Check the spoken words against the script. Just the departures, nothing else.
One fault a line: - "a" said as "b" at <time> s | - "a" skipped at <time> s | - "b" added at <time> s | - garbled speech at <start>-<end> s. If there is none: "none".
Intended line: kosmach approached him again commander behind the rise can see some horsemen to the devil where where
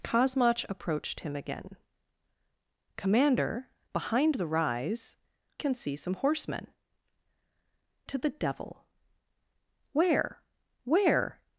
none